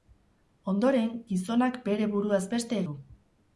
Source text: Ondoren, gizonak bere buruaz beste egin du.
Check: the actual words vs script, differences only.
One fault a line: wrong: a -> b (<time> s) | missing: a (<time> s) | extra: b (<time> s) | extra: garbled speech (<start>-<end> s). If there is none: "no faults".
missing: egin (2.8 s)